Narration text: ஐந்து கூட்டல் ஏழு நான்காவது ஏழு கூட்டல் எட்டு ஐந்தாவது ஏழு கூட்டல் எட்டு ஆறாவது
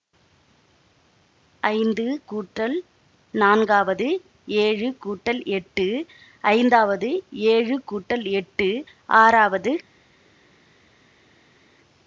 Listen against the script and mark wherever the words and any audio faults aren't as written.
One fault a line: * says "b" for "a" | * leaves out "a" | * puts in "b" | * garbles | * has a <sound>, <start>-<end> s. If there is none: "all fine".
* leaves out "ஏழு"